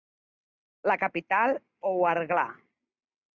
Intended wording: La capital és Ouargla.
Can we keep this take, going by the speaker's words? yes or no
no